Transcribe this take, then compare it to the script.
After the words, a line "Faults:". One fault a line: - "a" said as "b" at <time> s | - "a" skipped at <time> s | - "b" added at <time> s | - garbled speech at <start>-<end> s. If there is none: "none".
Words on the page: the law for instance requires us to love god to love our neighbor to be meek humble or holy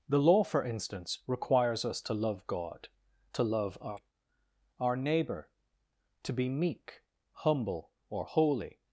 the law for instance requires us to love god to love our our neighbor to be meek humble or holy
Faults:
- "our" added at 4.8 s